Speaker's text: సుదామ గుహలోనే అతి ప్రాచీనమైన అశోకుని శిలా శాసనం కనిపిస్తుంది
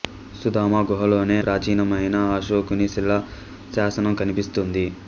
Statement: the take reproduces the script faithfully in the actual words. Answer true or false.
false